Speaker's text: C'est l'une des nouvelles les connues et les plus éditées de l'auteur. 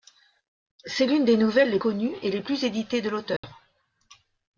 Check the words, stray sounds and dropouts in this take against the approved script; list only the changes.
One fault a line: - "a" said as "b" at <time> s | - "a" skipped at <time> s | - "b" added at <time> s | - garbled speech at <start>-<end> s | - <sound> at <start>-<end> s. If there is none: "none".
- dropout at 3.4-3.4 s